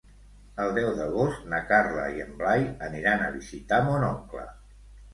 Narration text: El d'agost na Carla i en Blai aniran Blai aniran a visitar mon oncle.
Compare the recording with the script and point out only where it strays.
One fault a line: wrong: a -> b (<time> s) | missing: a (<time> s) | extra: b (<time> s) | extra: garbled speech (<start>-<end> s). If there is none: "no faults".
extra: deu (0.8 s)
missing: Blai aniran (3.2 s)